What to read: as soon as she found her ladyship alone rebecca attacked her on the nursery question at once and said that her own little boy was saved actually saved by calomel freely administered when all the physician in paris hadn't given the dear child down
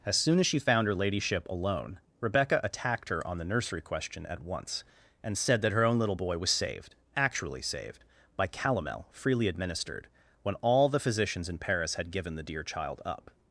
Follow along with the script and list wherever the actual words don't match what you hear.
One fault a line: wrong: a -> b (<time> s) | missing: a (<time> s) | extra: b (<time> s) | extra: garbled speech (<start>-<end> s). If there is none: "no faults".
wrong: physician -> physicians (11.0 s)
wrong: hadn't -> had (11.9 s)
wrong: down -> up (13.0 s)